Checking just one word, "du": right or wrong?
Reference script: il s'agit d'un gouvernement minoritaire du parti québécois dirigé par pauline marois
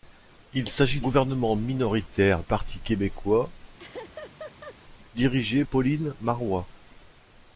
wrong